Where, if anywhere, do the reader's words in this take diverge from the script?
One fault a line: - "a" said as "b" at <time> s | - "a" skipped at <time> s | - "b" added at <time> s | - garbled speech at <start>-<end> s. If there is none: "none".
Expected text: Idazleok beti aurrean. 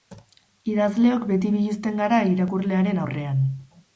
- "biluzten gara irakurlearen" added at 1.6 s